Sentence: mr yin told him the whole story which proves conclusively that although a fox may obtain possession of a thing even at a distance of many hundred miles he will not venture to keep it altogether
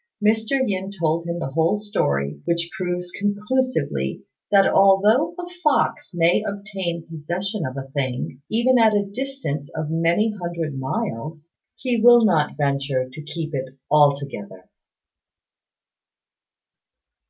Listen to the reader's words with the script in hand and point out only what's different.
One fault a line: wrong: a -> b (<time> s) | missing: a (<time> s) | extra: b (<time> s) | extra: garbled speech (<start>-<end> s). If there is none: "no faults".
no faults